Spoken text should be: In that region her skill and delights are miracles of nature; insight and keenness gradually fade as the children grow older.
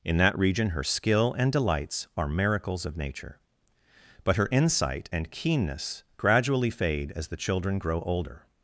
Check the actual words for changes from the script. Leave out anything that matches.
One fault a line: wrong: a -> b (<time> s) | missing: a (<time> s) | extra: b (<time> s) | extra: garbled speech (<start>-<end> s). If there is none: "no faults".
extra: but her (4.2 s)